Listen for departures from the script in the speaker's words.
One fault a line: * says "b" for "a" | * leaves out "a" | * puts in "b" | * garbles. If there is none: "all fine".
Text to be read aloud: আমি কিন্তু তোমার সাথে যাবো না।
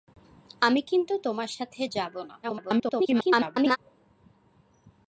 * garbles